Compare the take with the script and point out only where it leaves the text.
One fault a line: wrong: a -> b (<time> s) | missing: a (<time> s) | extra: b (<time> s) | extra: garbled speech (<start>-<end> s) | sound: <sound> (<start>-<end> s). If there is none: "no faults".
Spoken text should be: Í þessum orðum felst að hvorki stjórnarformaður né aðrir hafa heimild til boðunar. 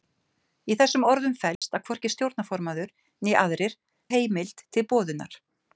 sound: dropout (1.6-1.6 s)
missing: hafa (3.8 s)